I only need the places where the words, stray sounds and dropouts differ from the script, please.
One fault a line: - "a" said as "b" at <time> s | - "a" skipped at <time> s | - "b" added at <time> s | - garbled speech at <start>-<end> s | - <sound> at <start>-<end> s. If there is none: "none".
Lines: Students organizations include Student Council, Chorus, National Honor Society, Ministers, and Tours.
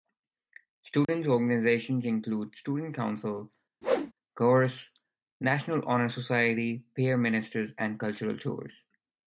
- dropout at 1.0-1.1 s
- whoosh at 3.8-4.1 s
- "Peer" added at 7.0 s
- "Cultural" added at 8.0 s